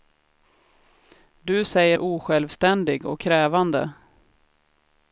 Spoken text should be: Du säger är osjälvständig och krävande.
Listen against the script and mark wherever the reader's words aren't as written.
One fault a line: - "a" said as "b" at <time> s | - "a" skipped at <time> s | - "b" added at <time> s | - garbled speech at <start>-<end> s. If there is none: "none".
none